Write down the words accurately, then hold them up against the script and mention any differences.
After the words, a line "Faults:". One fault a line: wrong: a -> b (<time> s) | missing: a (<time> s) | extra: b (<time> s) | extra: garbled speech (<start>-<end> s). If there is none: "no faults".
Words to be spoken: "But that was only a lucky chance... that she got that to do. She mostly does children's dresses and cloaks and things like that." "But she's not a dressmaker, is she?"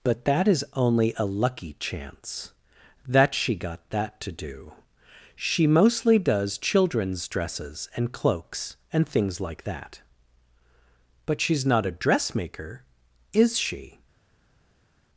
"But that is only a lucky chance... that she got that to do. She mostly does children's dresses and cloaks and things like that." "But she's not a dressmaker, is she?"
Faults:
wrong: was -> is (0.5 s)